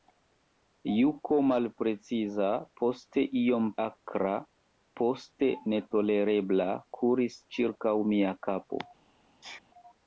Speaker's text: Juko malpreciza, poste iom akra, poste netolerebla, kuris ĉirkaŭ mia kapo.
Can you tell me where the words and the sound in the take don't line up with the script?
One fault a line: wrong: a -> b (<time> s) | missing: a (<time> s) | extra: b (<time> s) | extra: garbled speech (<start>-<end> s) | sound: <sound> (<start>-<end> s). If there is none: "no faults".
sound: sneeze (9.4-9.6 s)